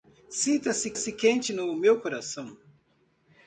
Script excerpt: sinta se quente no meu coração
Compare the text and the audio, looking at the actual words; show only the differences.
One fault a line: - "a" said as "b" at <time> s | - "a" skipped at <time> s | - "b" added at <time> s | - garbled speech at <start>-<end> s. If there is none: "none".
- "se" added at 0.9 s